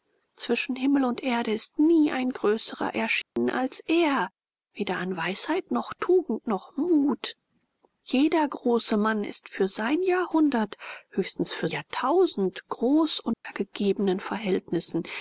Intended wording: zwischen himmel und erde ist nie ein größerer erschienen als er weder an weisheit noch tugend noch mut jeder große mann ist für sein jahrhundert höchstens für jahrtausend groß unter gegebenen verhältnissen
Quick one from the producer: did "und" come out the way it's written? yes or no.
yes